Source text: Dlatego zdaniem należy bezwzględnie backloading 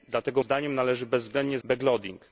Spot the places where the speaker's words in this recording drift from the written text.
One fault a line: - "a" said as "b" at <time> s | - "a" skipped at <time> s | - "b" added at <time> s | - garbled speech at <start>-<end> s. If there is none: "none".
none